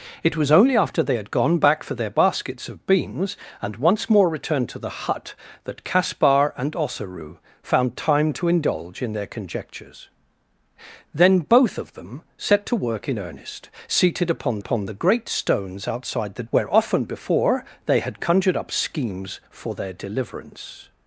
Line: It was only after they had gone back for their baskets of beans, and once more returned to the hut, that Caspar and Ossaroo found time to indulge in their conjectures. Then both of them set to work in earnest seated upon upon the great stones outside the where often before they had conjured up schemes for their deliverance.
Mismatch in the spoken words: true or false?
false